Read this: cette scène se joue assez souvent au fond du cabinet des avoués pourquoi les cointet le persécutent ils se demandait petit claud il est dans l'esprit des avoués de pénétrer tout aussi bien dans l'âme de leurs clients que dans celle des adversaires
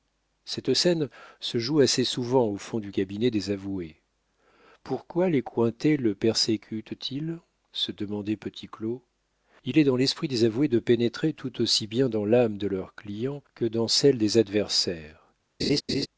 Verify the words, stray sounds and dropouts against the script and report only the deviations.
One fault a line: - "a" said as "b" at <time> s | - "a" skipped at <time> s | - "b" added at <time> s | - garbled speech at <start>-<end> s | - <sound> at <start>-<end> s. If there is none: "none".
- laugh at 15.6-16.1 s